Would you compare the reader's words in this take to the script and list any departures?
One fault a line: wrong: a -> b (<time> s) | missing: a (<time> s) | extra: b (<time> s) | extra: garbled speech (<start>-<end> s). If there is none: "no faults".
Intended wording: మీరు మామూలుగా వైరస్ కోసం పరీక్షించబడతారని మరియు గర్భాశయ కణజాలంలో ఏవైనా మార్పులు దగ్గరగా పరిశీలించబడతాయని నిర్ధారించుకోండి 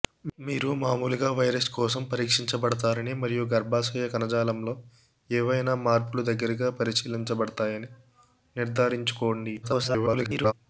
extra: garbled speech (9.6-10.5 s)